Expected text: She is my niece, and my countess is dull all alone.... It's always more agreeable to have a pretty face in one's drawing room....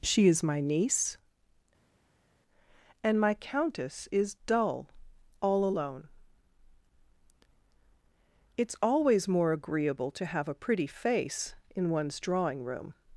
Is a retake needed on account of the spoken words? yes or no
no